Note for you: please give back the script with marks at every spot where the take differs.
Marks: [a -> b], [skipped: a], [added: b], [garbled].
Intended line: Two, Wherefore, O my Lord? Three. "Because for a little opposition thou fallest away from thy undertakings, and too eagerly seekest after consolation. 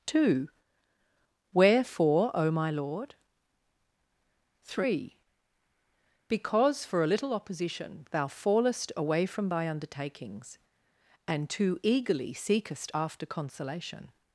Two, Wherefore, O my Lord? Three. "Because for a little opposition thou fallest away from thy undertakings, and too eagerly seekest after consolation.